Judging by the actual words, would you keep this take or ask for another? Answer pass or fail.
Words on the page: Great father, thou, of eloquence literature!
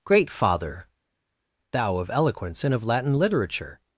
fail